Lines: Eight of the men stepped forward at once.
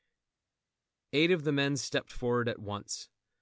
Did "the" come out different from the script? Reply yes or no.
no